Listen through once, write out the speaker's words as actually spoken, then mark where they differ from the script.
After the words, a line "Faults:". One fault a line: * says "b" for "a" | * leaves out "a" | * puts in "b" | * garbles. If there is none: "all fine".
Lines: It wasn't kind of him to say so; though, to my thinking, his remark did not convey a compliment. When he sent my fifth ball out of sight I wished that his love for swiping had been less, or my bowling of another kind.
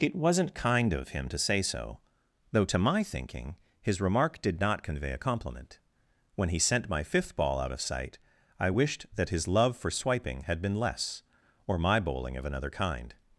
It wasn't kind of him to say so; though, to my thinking, his remark did not convey a compliment. When he sent my fifth ball out of sight I wished that his love for swiping had been less, or my bowling of another kind.
Faults:
all fine